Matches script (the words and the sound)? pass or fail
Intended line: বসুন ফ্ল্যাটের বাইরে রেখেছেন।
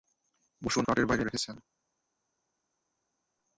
pass